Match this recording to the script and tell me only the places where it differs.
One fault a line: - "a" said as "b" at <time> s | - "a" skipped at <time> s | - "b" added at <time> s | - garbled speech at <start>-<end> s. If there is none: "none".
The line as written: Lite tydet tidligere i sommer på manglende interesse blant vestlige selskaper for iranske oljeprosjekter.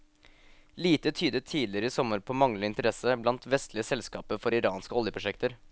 none